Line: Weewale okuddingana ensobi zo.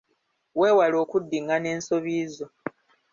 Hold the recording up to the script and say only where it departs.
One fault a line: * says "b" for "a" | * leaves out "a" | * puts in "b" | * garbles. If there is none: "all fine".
all fine